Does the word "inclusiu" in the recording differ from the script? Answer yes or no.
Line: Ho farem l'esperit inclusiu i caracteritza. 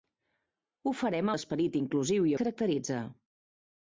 no